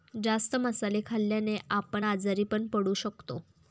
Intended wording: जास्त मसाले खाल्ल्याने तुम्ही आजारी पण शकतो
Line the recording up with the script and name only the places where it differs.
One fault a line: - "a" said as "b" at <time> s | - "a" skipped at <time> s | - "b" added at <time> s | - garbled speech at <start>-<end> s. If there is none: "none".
- "तुम्ही" said as "आपण" at 1.7 s
- "पडू" added at 2.7 s